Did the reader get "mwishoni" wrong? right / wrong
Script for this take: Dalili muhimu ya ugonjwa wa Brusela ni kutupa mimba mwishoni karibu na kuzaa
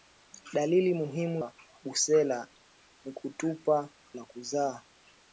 wrong